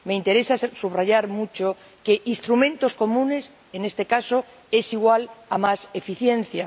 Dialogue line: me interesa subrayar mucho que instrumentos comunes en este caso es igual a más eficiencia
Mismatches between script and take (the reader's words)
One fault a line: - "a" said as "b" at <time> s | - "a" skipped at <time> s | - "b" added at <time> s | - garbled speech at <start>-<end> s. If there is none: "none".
none